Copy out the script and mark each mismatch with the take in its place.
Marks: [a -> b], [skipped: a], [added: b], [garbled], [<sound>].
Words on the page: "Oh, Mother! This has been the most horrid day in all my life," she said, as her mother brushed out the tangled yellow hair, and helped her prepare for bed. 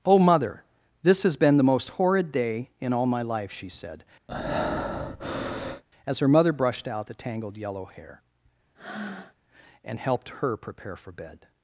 "Oh, Mother! This has been the most horrid day in all my life," she said, [breath] as her mother brushed out the tangled yellow hair, [breath] and helped her prepare for bed.